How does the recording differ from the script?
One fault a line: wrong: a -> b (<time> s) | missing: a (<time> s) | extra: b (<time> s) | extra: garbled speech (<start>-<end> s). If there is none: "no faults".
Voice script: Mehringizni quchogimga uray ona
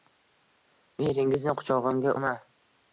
missing: uray (2.1 s)